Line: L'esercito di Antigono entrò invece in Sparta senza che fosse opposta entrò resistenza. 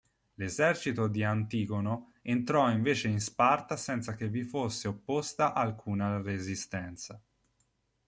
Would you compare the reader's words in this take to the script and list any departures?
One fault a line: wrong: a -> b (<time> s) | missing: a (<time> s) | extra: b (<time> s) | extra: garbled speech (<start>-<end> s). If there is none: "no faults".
extra: vi (4.3 s)
wrong: entrò -> alcuna (5.5 s)